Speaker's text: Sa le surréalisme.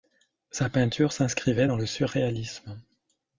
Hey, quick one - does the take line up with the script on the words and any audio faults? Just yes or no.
no